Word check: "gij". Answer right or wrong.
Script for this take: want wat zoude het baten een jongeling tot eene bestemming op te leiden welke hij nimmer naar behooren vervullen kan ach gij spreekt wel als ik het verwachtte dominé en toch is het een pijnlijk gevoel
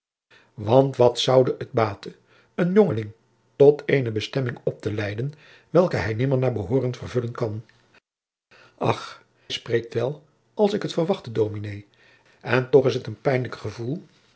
wrong